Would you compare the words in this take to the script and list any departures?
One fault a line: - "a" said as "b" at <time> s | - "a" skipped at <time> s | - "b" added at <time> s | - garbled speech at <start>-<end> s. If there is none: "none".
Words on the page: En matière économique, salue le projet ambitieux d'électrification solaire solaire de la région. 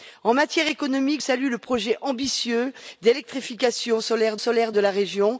none